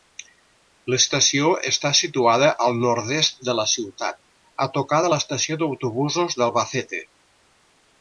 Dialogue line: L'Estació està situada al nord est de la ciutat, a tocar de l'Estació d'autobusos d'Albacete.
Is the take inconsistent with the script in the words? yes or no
no